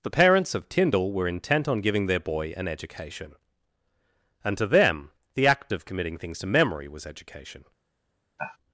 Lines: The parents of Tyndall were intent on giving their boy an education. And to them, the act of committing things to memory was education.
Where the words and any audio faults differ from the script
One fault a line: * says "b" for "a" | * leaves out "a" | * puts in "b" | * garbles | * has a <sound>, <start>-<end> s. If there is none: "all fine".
* has a sigh, 8.4-8.6 s